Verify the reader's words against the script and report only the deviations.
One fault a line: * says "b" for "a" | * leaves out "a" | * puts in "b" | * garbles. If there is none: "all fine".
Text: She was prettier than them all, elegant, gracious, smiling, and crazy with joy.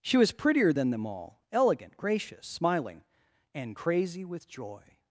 all fine